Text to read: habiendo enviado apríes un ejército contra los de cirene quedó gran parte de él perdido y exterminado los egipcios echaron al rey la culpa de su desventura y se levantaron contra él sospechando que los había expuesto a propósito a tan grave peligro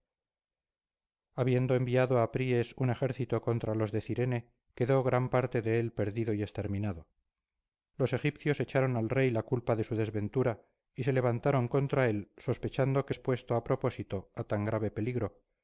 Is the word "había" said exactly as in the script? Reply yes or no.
no